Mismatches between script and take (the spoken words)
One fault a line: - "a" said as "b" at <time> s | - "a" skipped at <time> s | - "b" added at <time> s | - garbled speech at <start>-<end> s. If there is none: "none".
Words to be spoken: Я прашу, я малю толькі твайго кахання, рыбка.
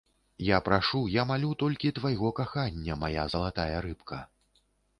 - "мая залатая" added at 3.0 s